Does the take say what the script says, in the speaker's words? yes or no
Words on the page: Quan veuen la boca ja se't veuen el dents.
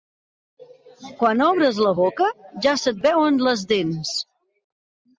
no